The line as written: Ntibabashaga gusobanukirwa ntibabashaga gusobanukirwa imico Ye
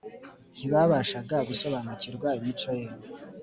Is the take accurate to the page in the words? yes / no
no